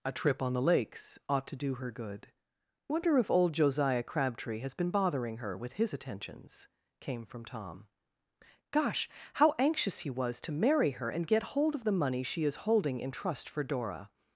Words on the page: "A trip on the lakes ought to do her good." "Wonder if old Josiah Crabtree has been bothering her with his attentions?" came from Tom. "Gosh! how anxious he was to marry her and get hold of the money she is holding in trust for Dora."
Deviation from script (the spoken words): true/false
false